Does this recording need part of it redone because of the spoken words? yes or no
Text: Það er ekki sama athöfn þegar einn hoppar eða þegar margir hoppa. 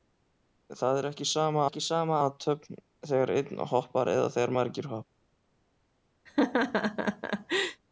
yes